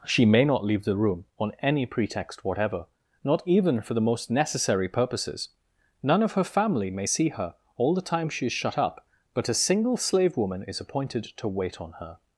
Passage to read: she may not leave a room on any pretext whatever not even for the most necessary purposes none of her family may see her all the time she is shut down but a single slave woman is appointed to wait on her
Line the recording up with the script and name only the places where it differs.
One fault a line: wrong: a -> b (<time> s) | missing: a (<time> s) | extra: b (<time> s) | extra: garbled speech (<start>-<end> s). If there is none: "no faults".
wrong: a -> the (0.8 s)
wrong: down -> up (8.8 s)